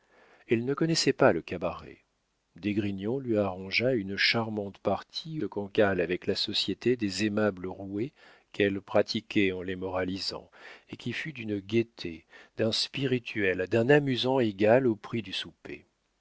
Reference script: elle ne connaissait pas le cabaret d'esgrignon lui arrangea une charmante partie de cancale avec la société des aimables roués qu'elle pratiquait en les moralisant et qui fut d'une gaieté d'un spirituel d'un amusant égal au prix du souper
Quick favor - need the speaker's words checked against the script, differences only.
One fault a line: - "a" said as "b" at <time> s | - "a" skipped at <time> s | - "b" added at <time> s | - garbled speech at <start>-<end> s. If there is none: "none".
none